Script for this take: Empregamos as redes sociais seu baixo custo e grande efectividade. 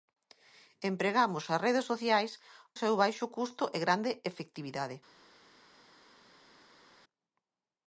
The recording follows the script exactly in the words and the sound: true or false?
true